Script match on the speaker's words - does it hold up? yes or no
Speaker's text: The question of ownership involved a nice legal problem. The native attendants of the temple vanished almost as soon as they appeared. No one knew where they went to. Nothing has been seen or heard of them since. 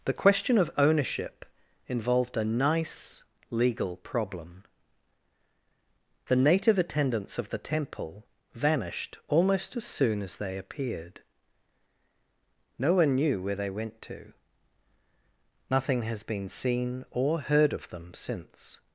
yes